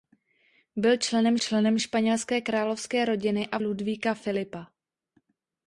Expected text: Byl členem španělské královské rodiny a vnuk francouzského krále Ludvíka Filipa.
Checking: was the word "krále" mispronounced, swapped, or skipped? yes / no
yes